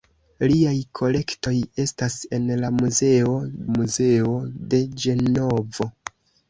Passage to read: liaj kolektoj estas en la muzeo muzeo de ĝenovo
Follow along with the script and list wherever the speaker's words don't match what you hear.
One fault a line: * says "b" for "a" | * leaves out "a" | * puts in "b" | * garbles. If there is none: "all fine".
all fine